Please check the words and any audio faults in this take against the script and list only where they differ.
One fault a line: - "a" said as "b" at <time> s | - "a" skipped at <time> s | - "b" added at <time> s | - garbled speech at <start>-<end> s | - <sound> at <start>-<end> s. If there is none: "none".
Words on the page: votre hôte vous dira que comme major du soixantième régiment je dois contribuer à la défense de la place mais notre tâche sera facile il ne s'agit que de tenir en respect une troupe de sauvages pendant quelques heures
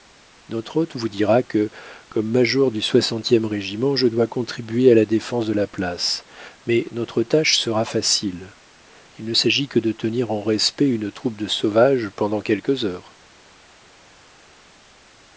- "votre" said as "notre" at 0.5 s